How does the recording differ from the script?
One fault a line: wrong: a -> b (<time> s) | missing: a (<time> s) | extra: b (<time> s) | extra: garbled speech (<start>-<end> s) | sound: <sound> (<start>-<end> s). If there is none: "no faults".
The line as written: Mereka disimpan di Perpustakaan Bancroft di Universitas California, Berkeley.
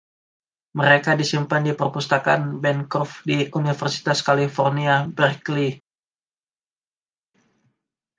no faults